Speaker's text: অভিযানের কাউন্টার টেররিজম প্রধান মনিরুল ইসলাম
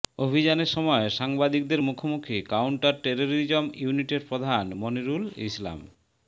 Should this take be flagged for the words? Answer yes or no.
yes